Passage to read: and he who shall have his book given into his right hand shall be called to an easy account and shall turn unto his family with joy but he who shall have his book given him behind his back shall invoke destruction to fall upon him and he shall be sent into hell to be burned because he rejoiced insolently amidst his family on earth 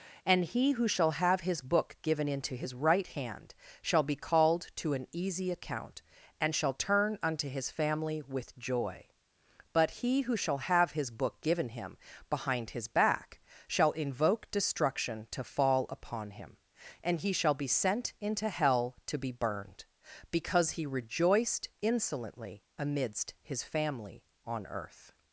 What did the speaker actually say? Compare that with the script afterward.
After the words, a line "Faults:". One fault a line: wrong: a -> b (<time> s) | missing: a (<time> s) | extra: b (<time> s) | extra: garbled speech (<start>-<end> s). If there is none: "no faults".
and he who shall have his book given into his right hand shall be called to an easy account and shall turn unto his family with joy but he who shall have his book given him behind his back shall invoke destruction to fall upon him and he shall be sent into hell to be burned because he rejoiced insolently amidst his family on earth
Faults:
no faults